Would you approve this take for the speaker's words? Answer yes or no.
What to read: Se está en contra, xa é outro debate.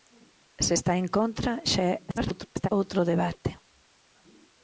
no